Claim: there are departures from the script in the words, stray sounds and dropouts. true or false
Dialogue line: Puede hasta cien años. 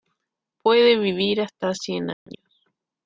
true